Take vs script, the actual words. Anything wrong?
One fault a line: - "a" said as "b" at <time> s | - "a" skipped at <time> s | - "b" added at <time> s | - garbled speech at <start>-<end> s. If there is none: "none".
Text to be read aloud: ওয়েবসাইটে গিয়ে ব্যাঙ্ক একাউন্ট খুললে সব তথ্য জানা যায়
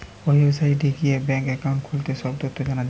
none